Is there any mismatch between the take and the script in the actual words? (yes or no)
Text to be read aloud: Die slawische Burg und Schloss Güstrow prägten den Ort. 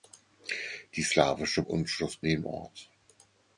yes